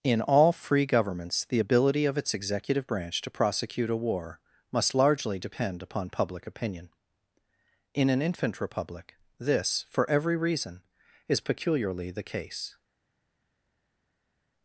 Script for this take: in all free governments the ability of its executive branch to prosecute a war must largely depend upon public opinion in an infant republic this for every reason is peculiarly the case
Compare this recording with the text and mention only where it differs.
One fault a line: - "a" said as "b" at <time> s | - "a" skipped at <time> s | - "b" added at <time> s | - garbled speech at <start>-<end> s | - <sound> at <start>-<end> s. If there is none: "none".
none